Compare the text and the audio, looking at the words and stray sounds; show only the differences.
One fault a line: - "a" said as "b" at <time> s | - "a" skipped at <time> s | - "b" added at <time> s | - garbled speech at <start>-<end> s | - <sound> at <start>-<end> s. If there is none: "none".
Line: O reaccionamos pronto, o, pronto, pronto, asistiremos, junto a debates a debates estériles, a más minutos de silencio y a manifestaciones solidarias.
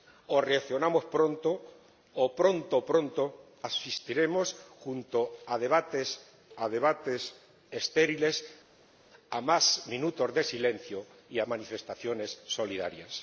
none